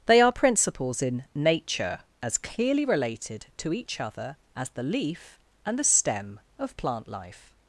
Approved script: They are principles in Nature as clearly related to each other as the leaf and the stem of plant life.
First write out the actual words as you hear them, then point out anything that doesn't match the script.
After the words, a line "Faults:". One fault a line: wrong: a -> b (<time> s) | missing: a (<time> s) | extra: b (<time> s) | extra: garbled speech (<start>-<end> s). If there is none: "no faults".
They are principles in Nature as clearly related to each other as the leaf and the stem of plant life.
Faults:
no faults